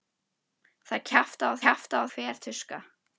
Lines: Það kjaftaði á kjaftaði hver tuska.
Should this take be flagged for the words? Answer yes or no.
no